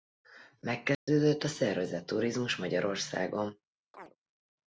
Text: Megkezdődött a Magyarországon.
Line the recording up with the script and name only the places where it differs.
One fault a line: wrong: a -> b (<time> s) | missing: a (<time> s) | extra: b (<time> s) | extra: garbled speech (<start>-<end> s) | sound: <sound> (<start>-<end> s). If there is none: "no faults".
sound: dropout (0.9-1.1 s)
extra: szervezett turizmus (1.5 s)
sound: chirp (3.9-4.2 s)